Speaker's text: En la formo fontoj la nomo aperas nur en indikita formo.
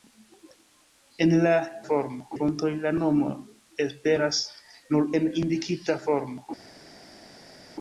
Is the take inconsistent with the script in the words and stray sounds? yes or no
no